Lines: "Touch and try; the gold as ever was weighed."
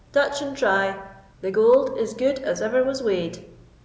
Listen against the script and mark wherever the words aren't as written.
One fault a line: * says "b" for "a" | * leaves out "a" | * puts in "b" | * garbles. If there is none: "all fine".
* puts in "is good"